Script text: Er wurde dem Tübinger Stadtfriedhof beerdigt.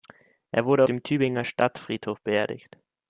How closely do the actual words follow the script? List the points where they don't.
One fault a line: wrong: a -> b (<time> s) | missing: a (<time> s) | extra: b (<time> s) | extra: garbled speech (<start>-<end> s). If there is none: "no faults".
no faults